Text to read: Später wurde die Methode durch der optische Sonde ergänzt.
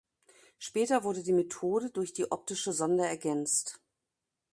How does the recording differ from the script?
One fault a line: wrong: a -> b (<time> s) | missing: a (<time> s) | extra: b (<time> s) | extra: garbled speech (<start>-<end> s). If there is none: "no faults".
wrong: der -> die (2.1 s)